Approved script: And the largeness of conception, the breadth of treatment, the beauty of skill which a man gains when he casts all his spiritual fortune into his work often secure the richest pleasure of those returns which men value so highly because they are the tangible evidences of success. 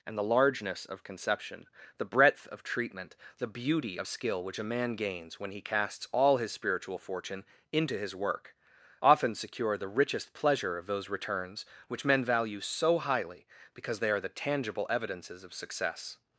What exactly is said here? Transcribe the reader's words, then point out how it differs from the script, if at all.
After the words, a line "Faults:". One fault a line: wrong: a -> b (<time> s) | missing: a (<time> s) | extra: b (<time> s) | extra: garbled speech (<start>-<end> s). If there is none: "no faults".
And the largeness of conception, the breadth of treatment, the beauty of skill which a man gains when he casts all his spiritual fortune into his work often secure the richest pleasure of those returns which men value so highly because they are the tangible evidences of success.
Faults:
no faults